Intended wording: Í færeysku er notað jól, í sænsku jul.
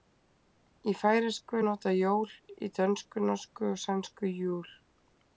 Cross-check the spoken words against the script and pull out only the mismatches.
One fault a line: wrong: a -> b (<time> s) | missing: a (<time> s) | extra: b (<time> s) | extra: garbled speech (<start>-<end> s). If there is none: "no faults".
extra: dönsku norsku og (2.8 s)